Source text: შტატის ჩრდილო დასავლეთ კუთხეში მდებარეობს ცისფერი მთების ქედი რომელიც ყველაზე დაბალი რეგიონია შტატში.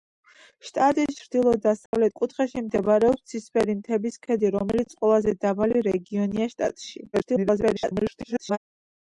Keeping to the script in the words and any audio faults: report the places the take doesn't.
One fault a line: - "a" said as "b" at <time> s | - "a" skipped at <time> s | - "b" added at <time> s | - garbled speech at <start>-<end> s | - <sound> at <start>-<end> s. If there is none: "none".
- dropout at 1.9-1.9 s
- garbled speech at 7.1-8.6 s